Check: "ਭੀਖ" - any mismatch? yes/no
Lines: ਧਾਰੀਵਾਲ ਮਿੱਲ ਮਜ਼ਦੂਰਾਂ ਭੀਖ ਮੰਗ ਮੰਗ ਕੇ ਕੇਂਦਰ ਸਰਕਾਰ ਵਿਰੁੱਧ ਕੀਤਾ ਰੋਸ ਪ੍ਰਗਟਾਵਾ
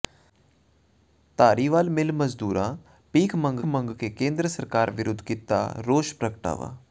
no